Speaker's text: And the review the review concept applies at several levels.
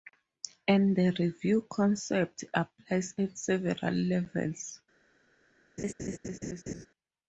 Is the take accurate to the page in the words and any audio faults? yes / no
no